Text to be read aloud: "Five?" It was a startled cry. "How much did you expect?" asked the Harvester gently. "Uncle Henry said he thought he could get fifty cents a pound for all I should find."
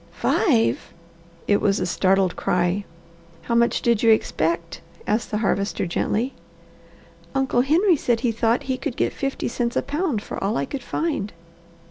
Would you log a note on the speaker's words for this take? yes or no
yes